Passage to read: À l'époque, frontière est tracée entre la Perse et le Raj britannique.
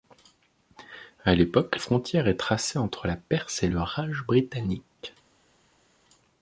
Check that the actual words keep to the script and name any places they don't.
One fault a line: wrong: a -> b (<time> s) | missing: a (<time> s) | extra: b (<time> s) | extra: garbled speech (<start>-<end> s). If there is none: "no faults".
no faults